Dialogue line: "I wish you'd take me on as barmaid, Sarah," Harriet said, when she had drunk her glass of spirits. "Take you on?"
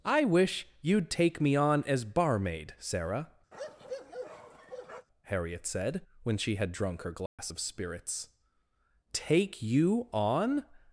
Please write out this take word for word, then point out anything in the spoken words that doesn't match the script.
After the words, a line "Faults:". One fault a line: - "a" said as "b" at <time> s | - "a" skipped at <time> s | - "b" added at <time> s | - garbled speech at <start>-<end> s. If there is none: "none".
"I wish you'd take me on as barmaid, Sarah," Harriet said, when she had drunk her glass of spirits. "Take you on?"
Faults:
none